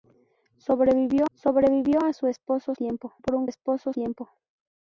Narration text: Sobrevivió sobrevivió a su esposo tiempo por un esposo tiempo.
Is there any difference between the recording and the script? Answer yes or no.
no